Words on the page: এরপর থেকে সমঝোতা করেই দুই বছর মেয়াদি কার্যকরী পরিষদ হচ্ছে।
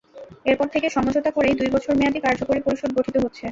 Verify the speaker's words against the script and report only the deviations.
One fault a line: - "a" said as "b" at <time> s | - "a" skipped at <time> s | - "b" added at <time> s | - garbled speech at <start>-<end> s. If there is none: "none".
- "গঠিত" added at 3.0 s